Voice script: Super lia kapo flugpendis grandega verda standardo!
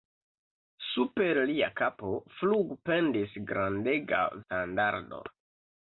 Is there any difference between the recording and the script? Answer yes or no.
yes